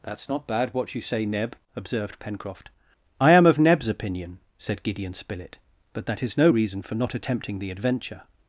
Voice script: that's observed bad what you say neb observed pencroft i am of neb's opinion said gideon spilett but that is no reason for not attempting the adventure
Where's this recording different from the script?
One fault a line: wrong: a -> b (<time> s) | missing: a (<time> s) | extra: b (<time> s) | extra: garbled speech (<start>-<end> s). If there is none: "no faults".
wrong: observed -> not (0.3 s)